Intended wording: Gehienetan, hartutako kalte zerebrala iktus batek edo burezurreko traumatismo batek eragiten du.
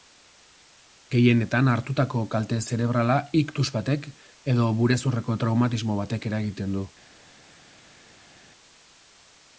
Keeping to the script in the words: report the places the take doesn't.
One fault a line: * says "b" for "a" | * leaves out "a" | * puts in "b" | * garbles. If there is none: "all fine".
all fine